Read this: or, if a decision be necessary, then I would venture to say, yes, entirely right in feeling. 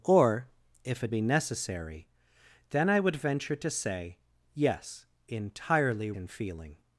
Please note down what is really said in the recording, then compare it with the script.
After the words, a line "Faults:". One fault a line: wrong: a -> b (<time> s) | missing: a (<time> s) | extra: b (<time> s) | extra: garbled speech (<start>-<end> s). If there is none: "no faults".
or, if a be necessary, then I would venture to say, yes, entirely in feeling.
Faults:
missing: decision (1.1 s)
missing: right (6.1 s)